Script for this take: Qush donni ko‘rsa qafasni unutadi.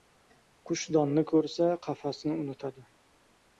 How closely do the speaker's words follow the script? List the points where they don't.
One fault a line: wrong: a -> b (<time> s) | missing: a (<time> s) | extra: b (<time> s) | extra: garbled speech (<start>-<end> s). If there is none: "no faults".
no faults